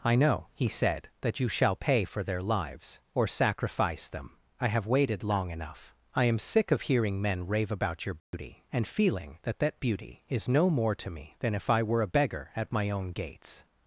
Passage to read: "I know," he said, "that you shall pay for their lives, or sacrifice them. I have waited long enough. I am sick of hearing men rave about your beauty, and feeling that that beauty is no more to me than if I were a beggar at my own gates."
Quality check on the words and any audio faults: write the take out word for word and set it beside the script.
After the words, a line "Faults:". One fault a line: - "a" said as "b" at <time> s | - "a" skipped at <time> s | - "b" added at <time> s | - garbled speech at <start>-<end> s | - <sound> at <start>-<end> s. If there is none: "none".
"I know," he said, "that you shall pay for their lives, or sacrifice them. I have waited long enough. I am sick of hearing men rave about your beauty, and feeling that that beauty is no more to me than if I were a beggar at my own gates."
Faults:
- dropout at 8.2-8.3 s